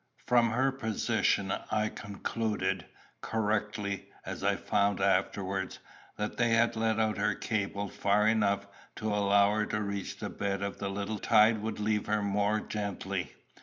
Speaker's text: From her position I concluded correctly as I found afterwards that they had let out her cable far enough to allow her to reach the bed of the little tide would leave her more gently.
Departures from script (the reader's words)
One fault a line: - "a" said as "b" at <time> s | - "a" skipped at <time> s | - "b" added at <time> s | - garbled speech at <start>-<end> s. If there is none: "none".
none